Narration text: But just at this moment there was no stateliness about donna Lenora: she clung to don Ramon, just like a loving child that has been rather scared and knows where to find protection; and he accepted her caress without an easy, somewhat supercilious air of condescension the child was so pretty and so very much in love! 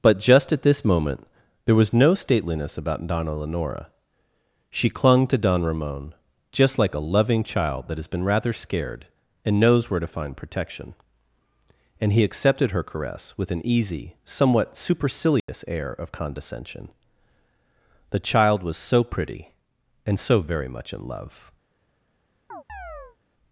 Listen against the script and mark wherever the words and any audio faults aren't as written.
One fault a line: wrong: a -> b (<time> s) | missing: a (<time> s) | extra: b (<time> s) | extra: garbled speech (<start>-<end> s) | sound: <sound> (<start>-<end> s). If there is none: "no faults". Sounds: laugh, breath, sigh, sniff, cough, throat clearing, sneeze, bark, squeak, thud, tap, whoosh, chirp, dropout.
wrong: without -> with (13.4 s)
sound: dropout (15.4-15.5 s)
sound: chirp (22.5-23.2 s)